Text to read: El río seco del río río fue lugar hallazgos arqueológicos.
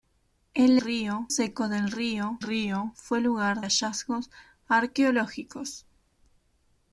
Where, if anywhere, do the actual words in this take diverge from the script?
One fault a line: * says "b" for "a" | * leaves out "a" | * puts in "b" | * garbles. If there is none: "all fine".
all fine